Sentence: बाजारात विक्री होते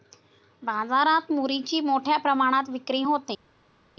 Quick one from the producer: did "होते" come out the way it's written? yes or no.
yes